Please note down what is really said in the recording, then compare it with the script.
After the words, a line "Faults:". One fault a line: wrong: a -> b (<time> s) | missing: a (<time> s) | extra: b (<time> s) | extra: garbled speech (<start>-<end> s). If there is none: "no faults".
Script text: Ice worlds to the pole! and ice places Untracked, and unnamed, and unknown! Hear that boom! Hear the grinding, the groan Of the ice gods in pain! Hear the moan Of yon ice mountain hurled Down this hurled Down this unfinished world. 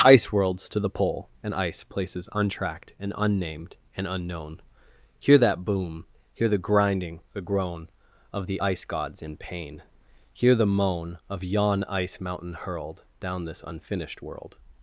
Ice worlds to the pole! and ice places Untracked, and unnamed, and unknown! Hear that boom! Hear the grinding, the groan Of the ice gods in pain! Hear the moan Of yon ice mountain hurled Down this unfinished world.
Faults:
missing: hurled Down this (13.6 s)